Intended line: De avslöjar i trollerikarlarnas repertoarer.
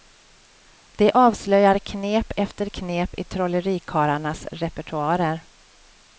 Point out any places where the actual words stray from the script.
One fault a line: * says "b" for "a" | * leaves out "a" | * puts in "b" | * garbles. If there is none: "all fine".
* puts in "knep efter knep"